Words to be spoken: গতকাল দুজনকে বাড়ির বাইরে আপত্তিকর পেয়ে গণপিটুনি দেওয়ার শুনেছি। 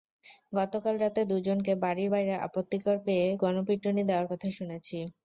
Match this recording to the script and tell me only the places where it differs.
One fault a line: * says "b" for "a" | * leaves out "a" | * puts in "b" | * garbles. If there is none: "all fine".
* puts in "রাতে"
* puts in "কথা"